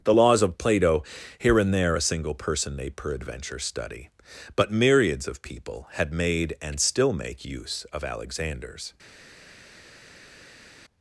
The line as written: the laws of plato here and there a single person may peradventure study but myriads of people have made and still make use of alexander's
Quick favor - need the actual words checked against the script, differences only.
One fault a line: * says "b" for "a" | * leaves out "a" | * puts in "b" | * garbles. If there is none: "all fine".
* says "had" for "have"